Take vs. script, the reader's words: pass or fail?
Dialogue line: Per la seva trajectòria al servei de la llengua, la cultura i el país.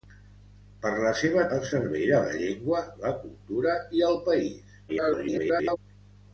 fail